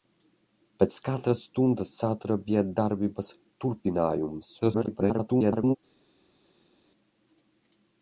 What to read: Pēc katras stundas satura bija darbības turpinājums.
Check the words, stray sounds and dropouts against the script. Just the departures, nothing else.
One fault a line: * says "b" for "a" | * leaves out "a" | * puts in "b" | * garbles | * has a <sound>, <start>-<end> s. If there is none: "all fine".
* garbles